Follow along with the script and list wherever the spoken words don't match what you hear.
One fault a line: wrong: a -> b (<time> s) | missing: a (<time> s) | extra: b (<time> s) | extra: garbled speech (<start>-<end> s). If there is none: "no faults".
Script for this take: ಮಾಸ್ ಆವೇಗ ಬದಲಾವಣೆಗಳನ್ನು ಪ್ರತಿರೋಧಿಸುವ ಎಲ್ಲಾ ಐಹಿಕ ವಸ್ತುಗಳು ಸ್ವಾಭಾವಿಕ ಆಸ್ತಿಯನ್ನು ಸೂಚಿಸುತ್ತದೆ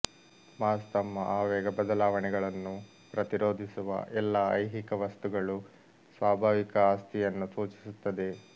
extra: ತಮ್ಮ (0.9 s)